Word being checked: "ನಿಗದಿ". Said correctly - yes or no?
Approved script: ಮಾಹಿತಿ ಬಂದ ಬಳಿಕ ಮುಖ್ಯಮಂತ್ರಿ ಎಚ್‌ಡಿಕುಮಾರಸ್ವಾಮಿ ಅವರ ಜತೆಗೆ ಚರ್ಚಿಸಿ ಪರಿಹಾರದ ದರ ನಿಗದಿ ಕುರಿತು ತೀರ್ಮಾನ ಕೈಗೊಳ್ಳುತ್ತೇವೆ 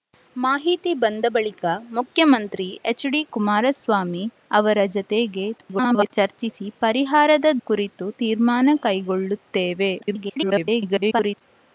no